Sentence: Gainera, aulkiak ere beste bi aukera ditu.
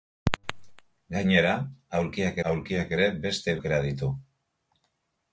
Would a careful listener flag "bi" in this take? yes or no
yes